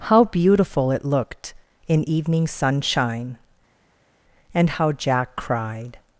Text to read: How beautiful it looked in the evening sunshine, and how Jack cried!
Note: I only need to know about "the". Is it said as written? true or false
false